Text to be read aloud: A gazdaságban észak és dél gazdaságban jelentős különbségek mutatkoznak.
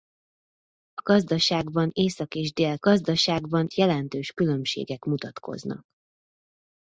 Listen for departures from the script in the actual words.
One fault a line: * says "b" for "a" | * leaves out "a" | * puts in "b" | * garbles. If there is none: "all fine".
all fine